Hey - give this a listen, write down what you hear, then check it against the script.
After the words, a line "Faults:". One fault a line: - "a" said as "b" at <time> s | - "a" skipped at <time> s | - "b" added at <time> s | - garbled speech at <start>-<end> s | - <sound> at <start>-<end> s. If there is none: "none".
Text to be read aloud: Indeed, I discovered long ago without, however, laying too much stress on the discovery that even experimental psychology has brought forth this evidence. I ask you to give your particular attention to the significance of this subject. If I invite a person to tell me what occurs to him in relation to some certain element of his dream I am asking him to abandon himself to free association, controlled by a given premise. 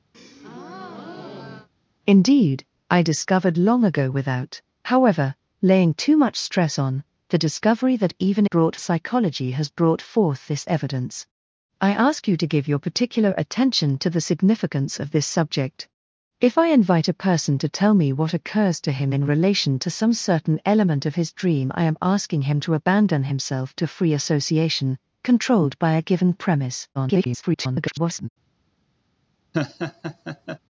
Indeed, I discovered long ago without, however, laying too much stress on the discovery that even brought psychology has brought forth this evidence. I ask you to give your particular attention to the significance of this subject. If I invite a person to tell me what occurs to him in relation to some certain element of his dream I am asking him to abandon himself to free association, controlled by a given premise. [garbled]
Faults:
- breath at 0.1-1.7 s
- "experimental" said as "brought" at 8.4 s
- garbled speech at 26.9-28.3 s
- laugh at 29.5-30.6 s